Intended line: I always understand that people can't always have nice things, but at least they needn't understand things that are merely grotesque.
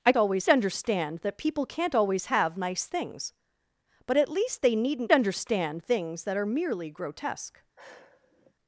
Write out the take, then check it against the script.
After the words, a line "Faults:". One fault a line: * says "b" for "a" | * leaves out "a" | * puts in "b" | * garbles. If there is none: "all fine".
I always understand that people can't always have nice things, but at least they needn't understand things that are merely grotesque.
Faults:
all fine